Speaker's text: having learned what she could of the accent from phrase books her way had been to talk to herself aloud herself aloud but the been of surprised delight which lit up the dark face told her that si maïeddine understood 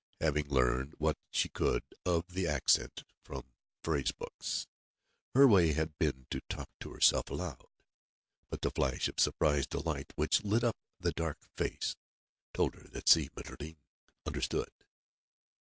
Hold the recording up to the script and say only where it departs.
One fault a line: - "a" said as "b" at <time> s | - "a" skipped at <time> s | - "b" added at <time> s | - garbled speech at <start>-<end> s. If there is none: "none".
- "herself aloud" skipped at 7.7 s
- "been" said as "flash" at 8.7 s